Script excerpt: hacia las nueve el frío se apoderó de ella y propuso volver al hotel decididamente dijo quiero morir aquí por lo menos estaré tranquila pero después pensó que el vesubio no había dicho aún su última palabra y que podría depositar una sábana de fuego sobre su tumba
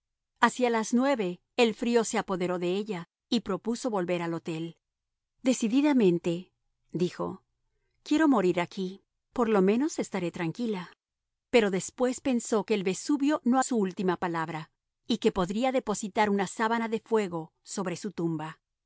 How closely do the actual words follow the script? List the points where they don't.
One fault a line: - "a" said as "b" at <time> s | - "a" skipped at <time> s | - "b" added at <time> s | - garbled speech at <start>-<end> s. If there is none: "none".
- "había dicho aún" skipped at 13.6 s